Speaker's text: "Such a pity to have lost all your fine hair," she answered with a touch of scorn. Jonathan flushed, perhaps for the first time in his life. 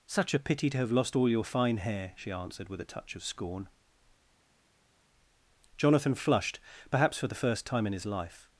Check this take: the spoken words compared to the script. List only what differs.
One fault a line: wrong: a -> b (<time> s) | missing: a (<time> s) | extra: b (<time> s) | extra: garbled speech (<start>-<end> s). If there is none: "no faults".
no faults